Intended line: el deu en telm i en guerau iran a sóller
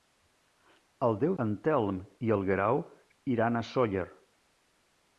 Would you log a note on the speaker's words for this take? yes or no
no